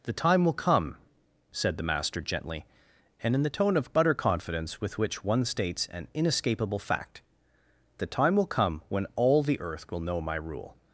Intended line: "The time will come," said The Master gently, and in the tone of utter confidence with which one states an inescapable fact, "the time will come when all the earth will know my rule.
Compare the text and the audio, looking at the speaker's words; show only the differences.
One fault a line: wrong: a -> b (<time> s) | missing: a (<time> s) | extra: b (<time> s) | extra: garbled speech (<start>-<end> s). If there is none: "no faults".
no faults